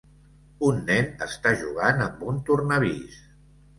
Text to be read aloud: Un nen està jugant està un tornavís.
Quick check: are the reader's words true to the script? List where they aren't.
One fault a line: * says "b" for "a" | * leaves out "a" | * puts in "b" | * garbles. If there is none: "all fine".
* says "amb" for "està"